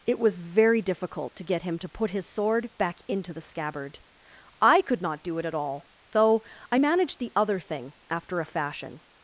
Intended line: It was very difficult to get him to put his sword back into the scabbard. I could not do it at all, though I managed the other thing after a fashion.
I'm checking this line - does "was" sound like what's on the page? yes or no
yes